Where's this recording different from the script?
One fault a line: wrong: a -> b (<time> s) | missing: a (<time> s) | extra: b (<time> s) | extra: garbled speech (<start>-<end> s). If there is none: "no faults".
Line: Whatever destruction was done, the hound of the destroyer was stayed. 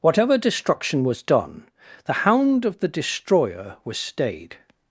no faults